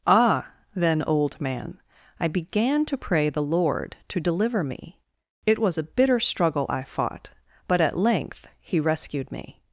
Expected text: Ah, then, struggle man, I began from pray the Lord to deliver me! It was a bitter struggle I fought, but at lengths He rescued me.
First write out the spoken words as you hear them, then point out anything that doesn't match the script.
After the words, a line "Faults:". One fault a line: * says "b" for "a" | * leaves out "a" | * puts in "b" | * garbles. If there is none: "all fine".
Ah, then, old man, I began to pray the Lord to deliver me! It was a bitter struggle I fought, but at length He rescued me.
Faults:
* says "old" for "struggle"
* says "to" for "from"
* says "length" for "lengths"